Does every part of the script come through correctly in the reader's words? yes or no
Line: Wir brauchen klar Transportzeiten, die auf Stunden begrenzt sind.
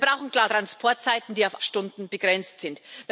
yes